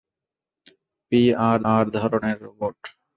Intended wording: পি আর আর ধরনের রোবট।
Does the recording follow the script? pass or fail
pass